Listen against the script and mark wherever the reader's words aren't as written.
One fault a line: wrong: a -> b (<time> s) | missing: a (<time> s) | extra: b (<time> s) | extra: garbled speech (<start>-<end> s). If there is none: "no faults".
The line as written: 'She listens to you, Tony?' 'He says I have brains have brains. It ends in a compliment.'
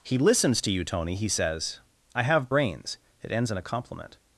wrong: She -> He (0.0 s)
missing: have brains (3.0 s)